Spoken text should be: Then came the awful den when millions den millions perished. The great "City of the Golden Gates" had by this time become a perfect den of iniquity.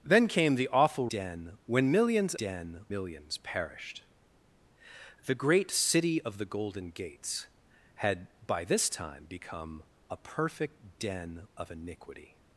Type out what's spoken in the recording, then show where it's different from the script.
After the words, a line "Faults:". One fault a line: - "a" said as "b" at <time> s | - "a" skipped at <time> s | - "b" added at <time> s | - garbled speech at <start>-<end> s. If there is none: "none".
Then came the awful den when millions den millions perished. The great "City of the Golden Gates" had by this time become a perfect den of iniquity.
Faults:
none